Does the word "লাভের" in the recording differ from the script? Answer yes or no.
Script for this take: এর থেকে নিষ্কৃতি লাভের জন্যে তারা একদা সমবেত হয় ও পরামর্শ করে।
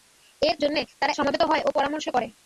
yes